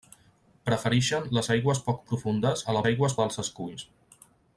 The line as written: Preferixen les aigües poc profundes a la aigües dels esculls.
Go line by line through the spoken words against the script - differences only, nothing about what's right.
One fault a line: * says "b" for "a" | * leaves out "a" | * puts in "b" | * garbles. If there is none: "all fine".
all fine